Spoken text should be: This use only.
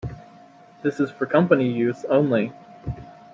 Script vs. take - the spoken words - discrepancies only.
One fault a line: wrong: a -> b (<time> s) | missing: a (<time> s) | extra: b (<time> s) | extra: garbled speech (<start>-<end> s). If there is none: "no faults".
extra: is for company (1.0 s)